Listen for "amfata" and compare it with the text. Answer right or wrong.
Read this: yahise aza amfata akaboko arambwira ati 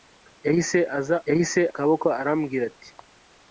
wrong